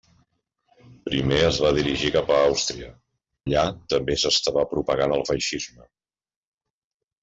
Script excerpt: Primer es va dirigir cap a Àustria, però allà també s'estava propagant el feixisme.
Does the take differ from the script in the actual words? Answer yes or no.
yes